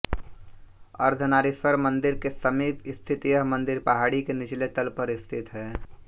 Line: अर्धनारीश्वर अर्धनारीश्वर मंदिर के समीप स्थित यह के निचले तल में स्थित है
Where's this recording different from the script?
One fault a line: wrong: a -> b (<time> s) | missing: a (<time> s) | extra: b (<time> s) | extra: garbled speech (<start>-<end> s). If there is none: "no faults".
missing: अर्धनारीश्वर (1.8 s)
extra: मंदिर पहाड़ी (3.5 s)
wrong: में -> पर (5.0 s)